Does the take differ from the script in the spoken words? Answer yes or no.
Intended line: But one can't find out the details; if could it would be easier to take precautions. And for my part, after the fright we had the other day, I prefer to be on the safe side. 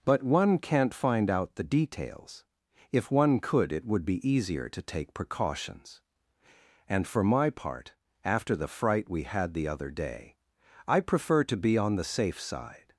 yes